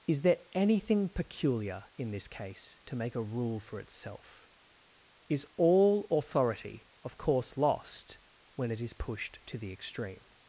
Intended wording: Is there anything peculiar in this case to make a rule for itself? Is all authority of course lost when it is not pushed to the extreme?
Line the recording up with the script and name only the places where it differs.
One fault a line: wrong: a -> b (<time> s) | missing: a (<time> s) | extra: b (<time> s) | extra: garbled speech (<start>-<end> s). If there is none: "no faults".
missing: not (8.9 s)